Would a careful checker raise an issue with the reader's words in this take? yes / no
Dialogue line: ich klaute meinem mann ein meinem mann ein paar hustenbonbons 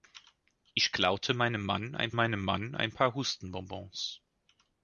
no